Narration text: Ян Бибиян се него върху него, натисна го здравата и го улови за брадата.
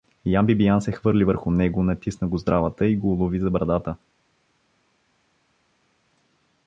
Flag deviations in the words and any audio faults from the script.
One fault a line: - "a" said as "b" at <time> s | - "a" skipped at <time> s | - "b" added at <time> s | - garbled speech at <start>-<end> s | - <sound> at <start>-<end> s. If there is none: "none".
- "него" said as "хвърли" at 0.9 s